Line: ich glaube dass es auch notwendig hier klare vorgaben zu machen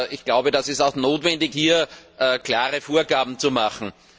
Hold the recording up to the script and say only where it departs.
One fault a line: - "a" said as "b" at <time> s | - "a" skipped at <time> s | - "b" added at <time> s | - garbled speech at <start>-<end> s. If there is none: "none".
none